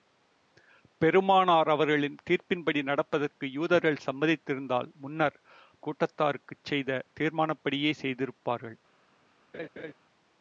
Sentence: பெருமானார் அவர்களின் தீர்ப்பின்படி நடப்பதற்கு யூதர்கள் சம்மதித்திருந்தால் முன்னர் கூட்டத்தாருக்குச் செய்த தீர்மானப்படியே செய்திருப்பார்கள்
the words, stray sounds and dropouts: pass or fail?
fail